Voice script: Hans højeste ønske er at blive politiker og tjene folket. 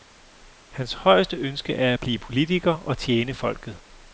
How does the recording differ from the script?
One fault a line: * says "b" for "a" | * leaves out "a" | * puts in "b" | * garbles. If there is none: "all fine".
all fine